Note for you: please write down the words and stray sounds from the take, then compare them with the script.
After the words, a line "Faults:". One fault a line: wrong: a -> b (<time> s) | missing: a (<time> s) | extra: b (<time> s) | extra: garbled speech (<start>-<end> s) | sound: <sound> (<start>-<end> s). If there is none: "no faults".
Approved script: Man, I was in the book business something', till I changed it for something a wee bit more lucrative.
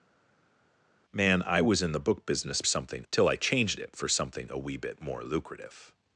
Man, I was in the book business something', till I changed it for something a wee bit more lucrative.
Faults:
no faults